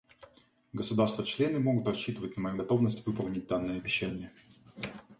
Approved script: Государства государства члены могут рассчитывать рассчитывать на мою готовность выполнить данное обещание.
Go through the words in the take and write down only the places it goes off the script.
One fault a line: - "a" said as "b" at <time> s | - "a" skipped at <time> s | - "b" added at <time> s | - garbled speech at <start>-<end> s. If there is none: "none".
- "государства" skipped at 1.2 s
- "рассчитывать" skipped at 2.4 s